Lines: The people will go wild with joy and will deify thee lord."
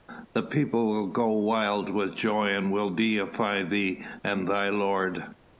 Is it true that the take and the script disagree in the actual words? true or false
true